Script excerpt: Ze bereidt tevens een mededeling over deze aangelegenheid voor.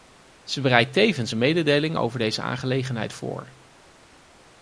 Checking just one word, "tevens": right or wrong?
right